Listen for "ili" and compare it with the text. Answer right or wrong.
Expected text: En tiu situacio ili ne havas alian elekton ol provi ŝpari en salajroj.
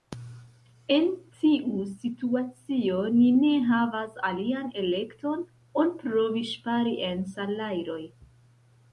wrong